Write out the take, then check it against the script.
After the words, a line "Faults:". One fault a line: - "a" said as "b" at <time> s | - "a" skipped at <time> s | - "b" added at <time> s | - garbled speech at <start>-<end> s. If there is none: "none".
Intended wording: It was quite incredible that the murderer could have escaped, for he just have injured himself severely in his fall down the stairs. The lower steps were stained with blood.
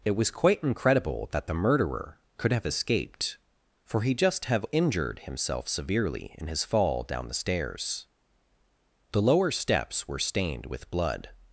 It was quite incredible that the murderer could have escaped, for he just have injured himself severely in his fall down the stairs. The lower steps were stained with blood.
Faults:
none